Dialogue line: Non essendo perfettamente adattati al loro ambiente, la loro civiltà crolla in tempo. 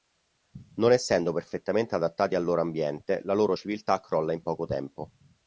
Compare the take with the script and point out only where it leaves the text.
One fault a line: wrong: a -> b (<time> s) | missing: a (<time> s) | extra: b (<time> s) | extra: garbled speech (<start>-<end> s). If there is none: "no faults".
extra: poco (4.4 s)